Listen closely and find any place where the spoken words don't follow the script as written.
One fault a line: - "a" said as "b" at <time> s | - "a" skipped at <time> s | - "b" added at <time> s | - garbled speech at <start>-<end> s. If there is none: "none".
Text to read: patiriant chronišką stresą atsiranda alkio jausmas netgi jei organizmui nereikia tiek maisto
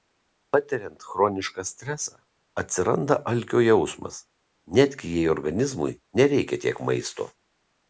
none